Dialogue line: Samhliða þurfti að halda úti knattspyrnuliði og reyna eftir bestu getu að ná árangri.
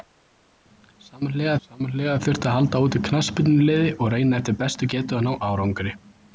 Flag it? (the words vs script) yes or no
yes